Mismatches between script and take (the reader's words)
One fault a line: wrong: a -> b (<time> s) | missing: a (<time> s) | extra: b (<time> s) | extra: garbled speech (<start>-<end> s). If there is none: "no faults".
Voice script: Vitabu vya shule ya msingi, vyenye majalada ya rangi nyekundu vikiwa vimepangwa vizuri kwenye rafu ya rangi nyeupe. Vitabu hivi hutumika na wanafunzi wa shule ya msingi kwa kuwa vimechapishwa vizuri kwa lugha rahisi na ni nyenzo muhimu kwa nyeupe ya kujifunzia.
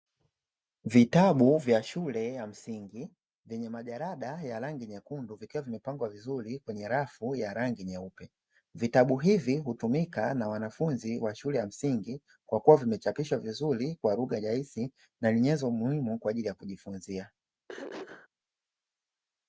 wrong: nyeupe -> ajili (16.3 s)